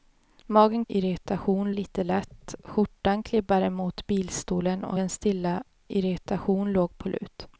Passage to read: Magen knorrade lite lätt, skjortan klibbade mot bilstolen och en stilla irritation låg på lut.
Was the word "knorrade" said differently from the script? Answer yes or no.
yes